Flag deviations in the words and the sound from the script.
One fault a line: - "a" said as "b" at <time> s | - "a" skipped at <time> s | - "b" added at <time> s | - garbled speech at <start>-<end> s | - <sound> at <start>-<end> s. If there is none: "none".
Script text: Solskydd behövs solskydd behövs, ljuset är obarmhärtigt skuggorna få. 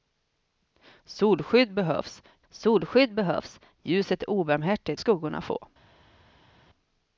none